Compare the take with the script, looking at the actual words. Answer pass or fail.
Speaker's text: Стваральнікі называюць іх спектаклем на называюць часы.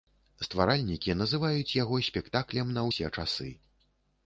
fail